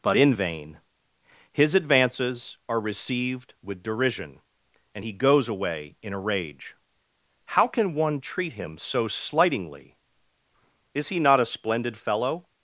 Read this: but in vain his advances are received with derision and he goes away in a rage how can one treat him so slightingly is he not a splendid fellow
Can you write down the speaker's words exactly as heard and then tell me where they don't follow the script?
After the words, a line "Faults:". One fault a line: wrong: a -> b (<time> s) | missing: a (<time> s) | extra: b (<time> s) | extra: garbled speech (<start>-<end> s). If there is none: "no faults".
but in vain his advances are received with derision and he goes away in a rage how can one treat him so slightingly is he not a splendid fellow
Faults:
no faults